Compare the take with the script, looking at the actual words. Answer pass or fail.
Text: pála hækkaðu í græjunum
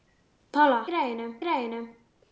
fail